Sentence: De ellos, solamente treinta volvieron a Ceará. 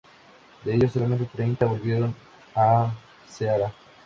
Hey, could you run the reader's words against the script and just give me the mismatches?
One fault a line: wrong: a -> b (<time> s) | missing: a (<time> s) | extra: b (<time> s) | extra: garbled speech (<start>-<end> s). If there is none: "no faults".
no faults